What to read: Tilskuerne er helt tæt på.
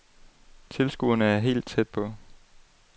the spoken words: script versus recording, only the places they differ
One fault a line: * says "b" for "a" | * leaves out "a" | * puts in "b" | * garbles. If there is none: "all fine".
all fine